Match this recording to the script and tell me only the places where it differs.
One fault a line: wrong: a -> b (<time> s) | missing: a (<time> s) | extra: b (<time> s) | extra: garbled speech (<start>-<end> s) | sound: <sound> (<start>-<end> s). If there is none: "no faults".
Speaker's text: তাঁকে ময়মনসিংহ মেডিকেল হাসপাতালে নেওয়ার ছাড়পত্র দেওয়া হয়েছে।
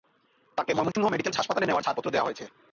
sound: dropout (0.9-0.9 s)